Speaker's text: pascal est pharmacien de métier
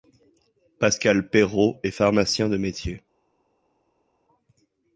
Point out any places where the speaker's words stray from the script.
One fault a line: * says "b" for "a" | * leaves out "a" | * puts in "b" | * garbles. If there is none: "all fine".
* puts in "perrault"